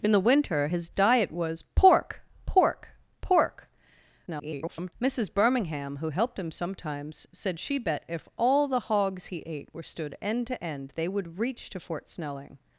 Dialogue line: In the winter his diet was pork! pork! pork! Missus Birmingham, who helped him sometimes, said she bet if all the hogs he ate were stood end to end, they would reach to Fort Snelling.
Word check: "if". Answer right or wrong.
right